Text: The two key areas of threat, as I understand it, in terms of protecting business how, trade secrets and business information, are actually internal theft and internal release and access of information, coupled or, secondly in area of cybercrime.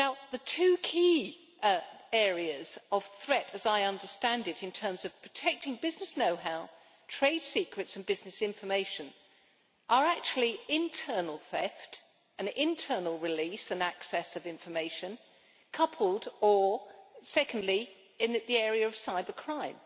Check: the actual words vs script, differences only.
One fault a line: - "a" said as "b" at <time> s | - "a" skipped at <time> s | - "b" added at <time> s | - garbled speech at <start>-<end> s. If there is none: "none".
- "know" added at 6.2 s
- "the" added at 18.5 s